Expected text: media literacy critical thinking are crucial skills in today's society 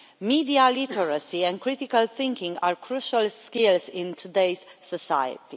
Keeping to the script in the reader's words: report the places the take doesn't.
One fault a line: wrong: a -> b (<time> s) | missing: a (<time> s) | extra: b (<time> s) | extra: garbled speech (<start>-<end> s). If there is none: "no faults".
extra: and (1.4 s)